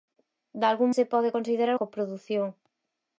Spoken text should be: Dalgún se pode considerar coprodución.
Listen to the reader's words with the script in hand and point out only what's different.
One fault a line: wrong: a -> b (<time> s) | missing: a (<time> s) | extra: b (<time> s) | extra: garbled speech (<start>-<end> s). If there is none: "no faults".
no faults